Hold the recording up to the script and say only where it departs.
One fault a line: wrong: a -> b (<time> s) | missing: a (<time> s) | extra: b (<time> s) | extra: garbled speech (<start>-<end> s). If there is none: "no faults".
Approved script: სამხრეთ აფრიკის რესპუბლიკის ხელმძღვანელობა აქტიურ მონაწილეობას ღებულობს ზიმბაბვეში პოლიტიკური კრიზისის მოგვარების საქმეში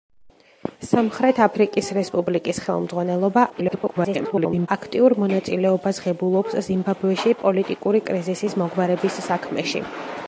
extra: garbled speech (3.5-4.7 s)